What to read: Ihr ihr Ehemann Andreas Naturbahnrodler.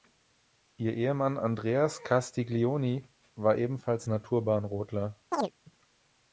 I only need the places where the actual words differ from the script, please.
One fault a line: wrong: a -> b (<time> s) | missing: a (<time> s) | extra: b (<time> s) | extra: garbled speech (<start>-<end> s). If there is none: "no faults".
missing: ihr (0.9 s)
extra: Castiglioni war ebenfalls (2.0 s)